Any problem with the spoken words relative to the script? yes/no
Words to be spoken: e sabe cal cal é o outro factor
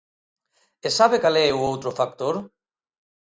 yes